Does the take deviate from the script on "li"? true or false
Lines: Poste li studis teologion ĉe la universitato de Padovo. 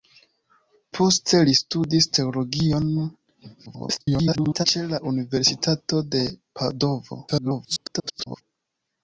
false